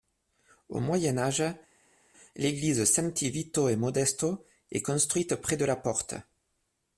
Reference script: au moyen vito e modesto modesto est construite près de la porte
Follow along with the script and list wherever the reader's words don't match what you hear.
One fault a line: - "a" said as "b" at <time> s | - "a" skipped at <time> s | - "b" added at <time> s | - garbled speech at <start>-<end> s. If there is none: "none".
- "âge l'église santi" added at 1.2 s
- "modesto" skipped at 4.4 s